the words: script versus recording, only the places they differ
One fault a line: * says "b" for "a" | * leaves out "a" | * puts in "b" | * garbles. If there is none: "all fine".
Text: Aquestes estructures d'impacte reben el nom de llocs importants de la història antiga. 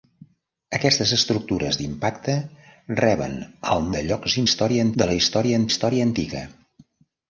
* leaves out "nom"
* says "història" for "importants"
* puts in "història"